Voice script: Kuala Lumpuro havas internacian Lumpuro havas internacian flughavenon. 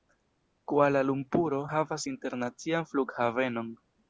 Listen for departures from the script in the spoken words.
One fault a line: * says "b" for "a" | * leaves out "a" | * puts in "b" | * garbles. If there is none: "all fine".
* leaves out "Lumpuro havas internacian"